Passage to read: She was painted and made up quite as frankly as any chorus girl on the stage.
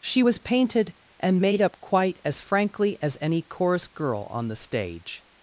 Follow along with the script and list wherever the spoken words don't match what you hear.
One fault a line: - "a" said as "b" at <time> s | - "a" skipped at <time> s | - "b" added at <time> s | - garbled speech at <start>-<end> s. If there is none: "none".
none